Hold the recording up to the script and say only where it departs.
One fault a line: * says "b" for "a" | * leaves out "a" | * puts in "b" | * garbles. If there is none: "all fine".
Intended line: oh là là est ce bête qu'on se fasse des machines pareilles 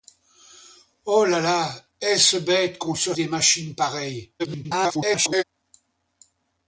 * leaves out "fasse"
* garbles